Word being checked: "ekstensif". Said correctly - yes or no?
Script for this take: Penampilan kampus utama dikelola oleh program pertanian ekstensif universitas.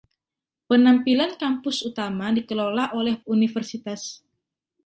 no